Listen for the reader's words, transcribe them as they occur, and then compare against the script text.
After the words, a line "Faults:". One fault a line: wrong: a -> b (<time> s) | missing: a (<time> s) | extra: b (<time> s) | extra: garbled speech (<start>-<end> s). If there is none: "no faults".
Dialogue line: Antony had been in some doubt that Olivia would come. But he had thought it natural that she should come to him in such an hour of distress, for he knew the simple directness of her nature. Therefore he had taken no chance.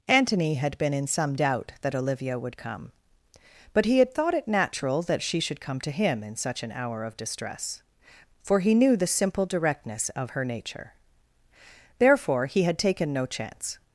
Antony had been in some doubt that Olivia would come. But he had thought it natural that she should come to him in such an hour of distress, for he knew the simple directness of her nature. Therefore he had taken no chance.
Faults:
no faults